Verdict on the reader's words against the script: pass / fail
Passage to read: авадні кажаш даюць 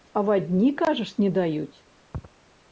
fail